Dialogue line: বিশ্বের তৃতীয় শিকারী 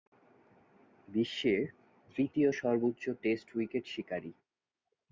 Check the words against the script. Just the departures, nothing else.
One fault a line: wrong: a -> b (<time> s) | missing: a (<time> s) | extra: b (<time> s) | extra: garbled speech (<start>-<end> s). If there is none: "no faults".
extra: সর্বোচ্চ টেস্ট উইকেট (2.5 s)